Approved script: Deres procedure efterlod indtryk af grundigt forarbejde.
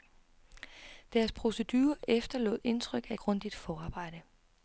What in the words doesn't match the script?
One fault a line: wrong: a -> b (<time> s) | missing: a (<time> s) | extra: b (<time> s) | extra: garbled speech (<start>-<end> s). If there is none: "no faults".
no faults